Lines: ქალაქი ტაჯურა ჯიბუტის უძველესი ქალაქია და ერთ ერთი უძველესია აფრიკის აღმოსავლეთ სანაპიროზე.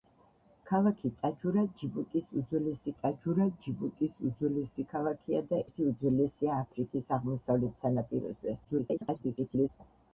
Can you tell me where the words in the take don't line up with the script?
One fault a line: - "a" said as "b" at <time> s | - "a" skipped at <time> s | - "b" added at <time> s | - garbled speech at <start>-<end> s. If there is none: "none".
- "ტაჯურა ჯიბუტის უძველესი" added at 3.0 s
- "ერთ" skipped at 5.6 s
- garbled speech at 8.6-9.7 s